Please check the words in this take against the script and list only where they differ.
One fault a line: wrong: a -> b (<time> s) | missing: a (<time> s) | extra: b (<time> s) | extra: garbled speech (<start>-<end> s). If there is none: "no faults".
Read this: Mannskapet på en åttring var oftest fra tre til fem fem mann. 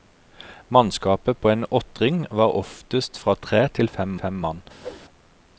no faults